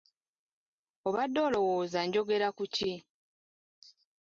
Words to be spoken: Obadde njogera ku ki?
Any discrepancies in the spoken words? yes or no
yes